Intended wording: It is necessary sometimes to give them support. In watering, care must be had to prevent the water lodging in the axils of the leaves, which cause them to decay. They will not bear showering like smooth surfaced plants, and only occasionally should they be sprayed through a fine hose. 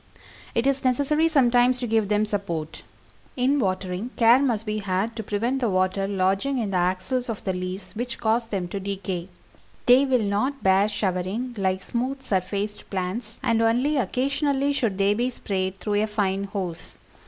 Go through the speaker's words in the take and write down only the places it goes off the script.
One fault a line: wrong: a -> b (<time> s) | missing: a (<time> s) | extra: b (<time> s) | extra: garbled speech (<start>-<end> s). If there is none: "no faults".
no faults